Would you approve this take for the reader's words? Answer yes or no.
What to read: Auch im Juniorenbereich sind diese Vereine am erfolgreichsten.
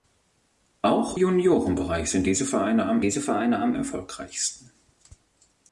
no